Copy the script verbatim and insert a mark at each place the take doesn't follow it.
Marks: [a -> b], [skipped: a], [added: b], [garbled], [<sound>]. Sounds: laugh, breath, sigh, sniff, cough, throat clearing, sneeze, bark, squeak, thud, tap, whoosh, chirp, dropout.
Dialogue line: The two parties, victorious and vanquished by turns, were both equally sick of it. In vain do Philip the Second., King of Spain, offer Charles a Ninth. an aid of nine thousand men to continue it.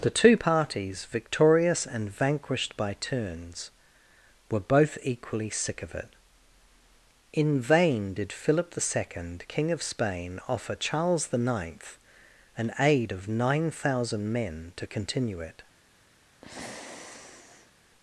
The two parties, victorious and vanquished by turns, were both equally sick of it. In vain [do -> did] Philip the Second., King of Spain, offer Charles [a -> the] Ninth. an aid of nine thousand men to continue it. [sigh]